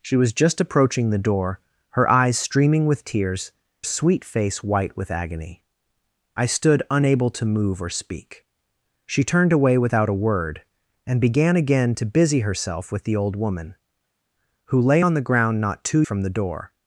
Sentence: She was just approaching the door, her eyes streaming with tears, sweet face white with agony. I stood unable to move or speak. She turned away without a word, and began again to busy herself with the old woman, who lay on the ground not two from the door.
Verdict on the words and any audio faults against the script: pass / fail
pass